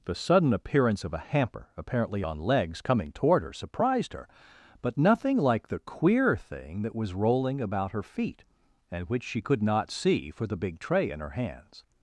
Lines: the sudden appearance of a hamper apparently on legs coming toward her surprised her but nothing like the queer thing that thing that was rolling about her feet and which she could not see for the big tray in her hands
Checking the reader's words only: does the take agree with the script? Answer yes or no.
no